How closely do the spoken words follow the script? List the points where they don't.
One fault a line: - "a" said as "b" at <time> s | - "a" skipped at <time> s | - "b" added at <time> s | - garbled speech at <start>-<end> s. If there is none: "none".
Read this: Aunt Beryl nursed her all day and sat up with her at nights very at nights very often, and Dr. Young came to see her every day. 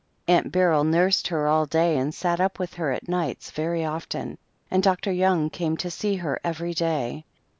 - "at nights very" skipped at 3.8 s